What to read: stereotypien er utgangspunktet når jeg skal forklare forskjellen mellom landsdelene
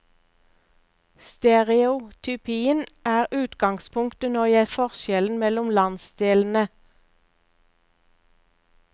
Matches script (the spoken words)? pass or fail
fail